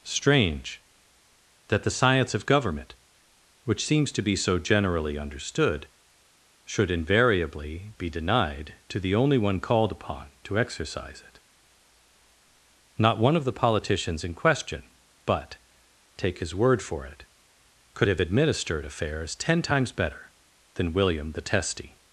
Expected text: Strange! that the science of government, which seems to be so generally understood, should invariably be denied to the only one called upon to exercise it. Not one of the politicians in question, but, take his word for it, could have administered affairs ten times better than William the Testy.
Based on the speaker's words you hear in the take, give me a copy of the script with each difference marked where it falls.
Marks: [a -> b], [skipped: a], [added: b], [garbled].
Strange! that the science of government, which seems to be so generally understood, should invariably be denied to the only one called upon to exercise it. Not one of the politicians in question, but, take his word for it, could have administered affairs ten times better than William the Testy.